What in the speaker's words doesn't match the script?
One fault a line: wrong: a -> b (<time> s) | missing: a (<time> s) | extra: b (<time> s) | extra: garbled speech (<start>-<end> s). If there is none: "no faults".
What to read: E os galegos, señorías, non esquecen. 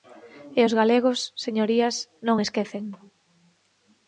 no faults